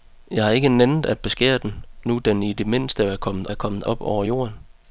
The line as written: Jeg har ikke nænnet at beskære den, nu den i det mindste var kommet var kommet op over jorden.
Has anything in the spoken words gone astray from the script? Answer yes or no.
no